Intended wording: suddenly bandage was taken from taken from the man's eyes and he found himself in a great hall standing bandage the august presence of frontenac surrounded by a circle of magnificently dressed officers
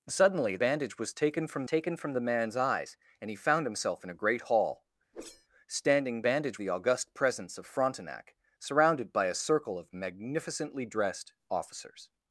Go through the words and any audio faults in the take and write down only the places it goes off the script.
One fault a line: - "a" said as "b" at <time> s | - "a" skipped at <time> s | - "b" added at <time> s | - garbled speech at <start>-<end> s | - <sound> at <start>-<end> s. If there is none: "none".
- whoosh at 5.1-5.5 s